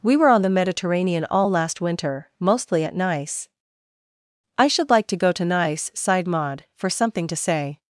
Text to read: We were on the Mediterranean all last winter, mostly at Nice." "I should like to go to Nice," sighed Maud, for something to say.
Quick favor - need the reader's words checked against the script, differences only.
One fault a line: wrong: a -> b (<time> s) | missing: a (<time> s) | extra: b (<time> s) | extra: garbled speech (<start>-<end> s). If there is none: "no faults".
no faults